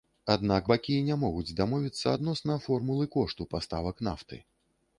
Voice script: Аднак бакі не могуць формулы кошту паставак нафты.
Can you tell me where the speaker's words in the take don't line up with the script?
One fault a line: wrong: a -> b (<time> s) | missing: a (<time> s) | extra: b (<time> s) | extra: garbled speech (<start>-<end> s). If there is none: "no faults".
extra: дамовіцца адносна (1.6 s)